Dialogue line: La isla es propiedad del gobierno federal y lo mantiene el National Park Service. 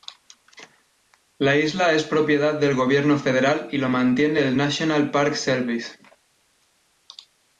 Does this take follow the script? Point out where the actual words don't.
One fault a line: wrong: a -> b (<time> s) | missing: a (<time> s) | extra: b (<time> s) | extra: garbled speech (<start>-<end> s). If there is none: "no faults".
no faults